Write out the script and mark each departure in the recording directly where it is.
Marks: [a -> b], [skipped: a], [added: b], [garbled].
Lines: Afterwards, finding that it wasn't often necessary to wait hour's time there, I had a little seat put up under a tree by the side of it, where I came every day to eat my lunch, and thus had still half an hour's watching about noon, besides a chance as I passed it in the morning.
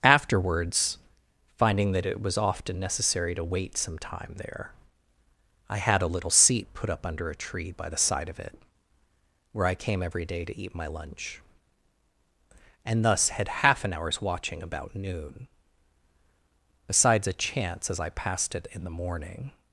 Afterwards, finding that it [wasn't -> was] often necessary to wait [hour's -> some] time there, I had a little seat put up under a tree by the side of it, where I came every day to eat my lunch, and thus had [skipped: still] half an hour's watching about noon, besides a chance as I passed it in the morning.